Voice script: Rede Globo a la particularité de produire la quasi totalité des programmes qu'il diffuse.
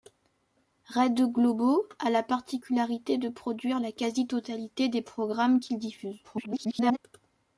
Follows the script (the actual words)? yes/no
no